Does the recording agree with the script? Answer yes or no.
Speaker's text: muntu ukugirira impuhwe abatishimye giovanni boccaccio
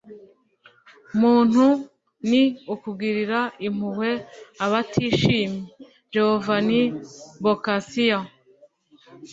no